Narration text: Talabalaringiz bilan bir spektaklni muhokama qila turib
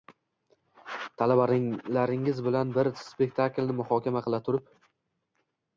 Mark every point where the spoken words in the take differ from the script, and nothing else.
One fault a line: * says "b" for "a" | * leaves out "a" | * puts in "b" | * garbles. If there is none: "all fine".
all fine